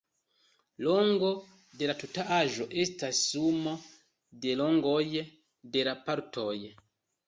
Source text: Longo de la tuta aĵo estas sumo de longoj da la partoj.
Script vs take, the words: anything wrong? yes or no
yes